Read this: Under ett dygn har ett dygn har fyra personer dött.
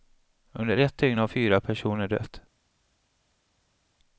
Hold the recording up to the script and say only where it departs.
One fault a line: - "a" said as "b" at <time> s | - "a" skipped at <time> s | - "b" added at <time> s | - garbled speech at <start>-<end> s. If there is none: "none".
- "ett dygn har" skipped at 1.3 s